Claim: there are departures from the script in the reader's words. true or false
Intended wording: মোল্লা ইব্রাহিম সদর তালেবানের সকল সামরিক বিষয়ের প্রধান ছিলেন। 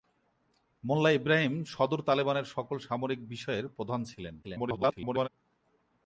true